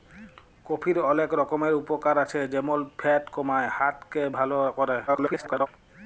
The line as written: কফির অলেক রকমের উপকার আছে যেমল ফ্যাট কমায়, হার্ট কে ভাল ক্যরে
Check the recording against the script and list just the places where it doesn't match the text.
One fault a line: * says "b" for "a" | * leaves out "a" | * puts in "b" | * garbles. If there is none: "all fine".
* garbles